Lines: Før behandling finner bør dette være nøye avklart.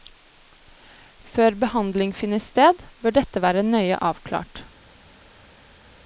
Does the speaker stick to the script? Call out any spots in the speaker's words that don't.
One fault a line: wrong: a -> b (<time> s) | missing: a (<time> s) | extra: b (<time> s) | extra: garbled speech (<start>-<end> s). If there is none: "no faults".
extra: sted (2.4 s)